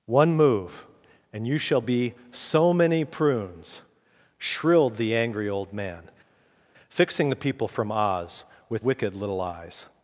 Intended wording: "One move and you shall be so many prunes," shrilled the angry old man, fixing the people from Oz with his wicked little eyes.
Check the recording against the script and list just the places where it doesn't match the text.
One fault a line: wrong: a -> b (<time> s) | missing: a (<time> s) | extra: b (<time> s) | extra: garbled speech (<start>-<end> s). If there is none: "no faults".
missing: his (8.8 s)